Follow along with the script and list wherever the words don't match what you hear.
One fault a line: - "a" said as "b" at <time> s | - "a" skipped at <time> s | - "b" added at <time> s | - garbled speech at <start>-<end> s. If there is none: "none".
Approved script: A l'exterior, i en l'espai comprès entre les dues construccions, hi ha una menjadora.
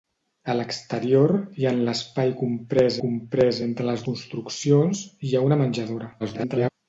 - "comprès" added at 3.0 s
- "dues" skipped at 4.1 s
- garbled speech at 6.2-6.7 s